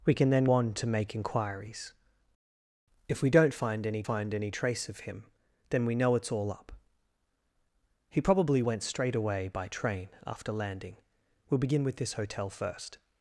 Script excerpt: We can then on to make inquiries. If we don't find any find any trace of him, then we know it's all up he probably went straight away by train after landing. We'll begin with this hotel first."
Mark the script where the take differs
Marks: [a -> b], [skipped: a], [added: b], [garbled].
We can then on to make inquiries. If we don't find any find any trace of him, then we know it's all up he probably went straight away by train after landing. We'll begin with this hotel first."